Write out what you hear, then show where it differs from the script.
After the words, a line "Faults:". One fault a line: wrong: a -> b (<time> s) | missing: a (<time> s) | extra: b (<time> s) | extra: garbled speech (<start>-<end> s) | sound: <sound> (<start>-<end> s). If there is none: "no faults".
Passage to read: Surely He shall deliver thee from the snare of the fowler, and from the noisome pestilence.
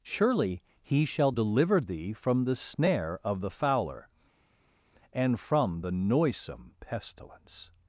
Surely He shall deliver thee from the snare of the fowler, and from the noisome pestilence.
Faults:
no faults